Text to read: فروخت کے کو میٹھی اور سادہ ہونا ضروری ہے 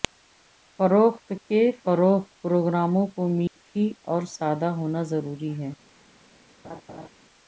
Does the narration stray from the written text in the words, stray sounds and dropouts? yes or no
yes